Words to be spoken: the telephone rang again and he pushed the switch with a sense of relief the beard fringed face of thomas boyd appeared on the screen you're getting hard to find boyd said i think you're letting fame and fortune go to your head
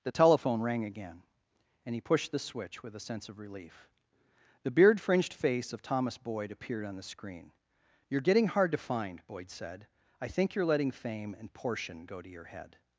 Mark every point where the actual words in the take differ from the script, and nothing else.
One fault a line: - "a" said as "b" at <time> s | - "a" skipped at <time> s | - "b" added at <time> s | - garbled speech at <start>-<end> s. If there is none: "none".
- "fortune" said as "portion" at 11.5 s